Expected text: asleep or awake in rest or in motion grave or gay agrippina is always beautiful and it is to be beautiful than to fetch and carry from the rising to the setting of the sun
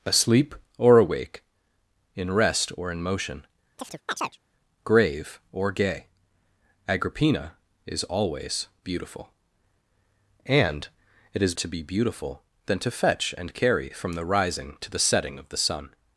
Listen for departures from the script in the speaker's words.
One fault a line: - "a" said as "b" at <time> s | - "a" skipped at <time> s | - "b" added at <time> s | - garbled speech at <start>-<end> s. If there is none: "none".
none